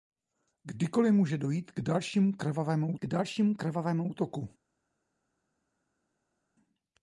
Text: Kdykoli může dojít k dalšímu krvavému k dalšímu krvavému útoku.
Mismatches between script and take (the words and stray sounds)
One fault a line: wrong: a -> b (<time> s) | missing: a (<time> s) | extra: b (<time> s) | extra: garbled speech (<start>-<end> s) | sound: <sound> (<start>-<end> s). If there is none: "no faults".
no faults